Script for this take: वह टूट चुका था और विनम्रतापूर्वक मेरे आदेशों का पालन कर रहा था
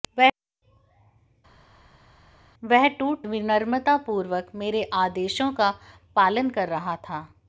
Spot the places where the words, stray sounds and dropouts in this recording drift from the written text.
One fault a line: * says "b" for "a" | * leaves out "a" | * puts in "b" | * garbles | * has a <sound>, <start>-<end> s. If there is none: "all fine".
* leaves out "चुका था और"